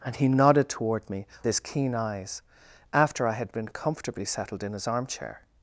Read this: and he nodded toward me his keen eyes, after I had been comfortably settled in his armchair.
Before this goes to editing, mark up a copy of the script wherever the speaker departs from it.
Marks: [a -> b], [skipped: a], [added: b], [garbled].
and he nodded toward me his keen eyes, after I had been comfortably settled in his armchair.